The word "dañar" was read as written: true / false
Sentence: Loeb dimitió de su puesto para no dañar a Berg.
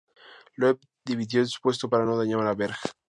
true